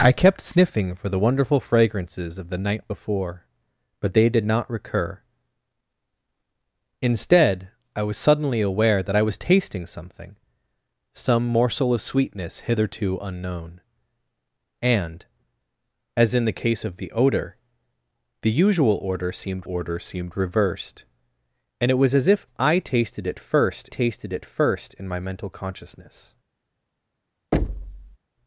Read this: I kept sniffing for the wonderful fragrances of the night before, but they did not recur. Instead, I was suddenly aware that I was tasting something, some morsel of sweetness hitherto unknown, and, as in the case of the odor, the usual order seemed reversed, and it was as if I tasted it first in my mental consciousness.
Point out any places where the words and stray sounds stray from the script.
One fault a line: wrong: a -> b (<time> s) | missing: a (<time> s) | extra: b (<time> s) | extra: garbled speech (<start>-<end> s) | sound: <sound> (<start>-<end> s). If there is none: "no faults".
extra: order seemed (19.7 s)
extra: tasted it first (23.9 s)
sound: thud (27.5-28.2 s)